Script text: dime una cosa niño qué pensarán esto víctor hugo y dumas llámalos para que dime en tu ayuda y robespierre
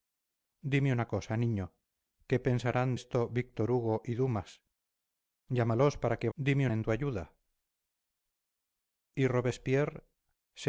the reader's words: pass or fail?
pass